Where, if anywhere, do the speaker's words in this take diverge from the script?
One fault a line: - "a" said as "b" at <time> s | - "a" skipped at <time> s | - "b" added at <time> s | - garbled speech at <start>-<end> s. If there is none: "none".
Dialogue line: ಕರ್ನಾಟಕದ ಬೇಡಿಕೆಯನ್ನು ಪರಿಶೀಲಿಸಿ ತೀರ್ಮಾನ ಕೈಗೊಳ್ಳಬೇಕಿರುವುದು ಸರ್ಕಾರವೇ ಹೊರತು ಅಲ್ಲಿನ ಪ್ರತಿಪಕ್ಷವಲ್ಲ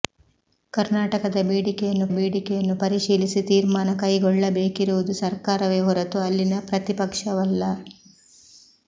- "ಬೇಡಿಕೆಯನ್ನು" added at 2.2 s